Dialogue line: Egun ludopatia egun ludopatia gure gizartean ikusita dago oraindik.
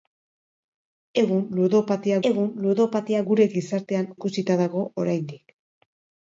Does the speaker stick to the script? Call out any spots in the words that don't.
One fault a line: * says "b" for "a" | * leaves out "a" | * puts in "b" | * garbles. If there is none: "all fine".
all fine